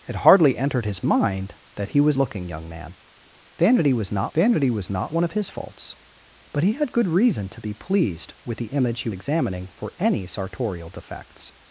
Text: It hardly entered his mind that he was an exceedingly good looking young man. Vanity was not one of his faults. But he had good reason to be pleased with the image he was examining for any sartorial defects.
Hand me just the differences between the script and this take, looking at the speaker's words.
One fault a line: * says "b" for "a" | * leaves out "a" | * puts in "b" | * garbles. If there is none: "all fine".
* leaves out "an exceedingly good"
* puts in "vanity was not"
* leaves out "was"